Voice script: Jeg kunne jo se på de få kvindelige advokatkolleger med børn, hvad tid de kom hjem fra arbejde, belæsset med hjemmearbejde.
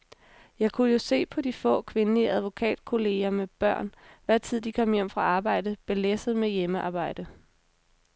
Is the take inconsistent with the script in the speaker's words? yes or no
no